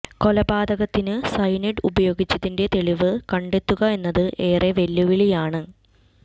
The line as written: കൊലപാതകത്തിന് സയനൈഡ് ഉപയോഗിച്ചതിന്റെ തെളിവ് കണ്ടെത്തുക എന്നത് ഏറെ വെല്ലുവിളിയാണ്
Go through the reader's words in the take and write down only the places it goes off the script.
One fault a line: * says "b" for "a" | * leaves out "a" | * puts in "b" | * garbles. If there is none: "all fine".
all fine